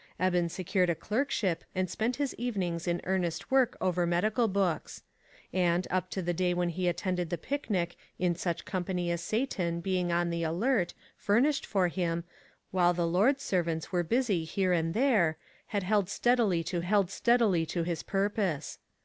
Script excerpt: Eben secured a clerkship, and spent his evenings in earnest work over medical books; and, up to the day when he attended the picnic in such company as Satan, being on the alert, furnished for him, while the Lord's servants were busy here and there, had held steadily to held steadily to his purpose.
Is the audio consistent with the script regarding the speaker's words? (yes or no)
yes